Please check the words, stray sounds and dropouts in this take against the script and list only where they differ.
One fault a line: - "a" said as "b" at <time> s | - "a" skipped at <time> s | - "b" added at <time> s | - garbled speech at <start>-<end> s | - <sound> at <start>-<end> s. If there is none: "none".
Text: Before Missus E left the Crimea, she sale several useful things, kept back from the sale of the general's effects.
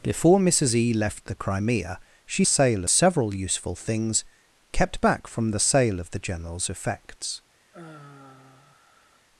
- sigh at 7.7-9.3 s